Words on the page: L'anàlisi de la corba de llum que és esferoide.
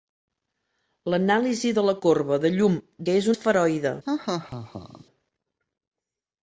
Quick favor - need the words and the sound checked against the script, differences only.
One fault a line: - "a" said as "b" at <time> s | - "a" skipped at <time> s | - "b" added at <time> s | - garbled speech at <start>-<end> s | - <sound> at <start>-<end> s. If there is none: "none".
- laugh at 4.1-5.1 s